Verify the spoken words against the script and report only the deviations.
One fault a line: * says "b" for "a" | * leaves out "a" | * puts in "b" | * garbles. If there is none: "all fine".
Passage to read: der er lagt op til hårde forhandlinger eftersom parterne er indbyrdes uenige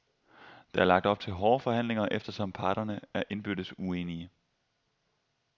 all fine